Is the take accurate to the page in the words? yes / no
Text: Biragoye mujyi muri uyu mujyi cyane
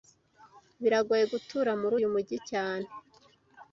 no